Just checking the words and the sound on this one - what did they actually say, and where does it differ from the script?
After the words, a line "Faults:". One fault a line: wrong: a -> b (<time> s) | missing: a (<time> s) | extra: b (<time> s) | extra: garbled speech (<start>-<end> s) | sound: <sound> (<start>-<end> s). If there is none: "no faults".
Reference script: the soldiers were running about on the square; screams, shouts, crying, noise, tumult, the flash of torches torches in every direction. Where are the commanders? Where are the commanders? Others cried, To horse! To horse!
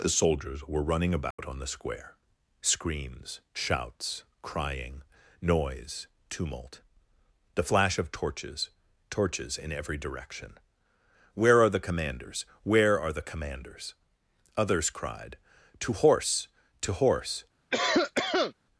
the soldiers were running about on the square; screams, shouts, crying, noise, tumult, the flash of torches torches in every direction. Where are the commanders? Where are the commanders? Others cried, To horse! To horse!
Faults:
sound: dropout (1.3-1.4 s)
sound: cough (17.7-18.5 s)